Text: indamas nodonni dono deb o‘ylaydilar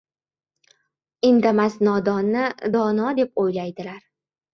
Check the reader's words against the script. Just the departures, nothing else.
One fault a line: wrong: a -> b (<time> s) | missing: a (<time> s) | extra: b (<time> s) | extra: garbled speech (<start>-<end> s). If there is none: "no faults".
no faults